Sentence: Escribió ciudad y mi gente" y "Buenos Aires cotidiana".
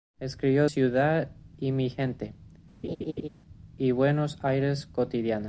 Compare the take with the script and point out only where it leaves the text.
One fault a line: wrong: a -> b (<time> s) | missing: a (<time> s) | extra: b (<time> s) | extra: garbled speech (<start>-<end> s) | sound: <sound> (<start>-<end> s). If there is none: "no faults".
sound: laugh (2.8-3.3 s)